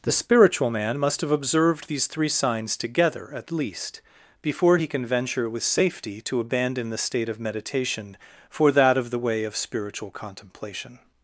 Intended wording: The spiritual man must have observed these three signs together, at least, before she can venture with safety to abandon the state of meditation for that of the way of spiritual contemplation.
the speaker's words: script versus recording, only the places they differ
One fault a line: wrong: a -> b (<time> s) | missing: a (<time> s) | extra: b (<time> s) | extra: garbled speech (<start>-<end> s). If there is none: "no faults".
wrong: she -> he (4.7 s)